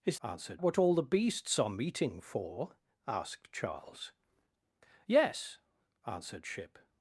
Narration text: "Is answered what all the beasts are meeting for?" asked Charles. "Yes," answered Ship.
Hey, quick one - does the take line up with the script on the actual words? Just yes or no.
yes